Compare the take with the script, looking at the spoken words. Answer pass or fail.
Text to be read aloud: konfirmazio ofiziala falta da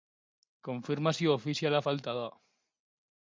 pass